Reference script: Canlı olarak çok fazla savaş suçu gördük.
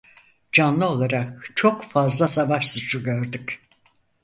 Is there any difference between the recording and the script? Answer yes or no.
no